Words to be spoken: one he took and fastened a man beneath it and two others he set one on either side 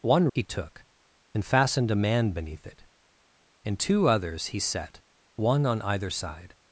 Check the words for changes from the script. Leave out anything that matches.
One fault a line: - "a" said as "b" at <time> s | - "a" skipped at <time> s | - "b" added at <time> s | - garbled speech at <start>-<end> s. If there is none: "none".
none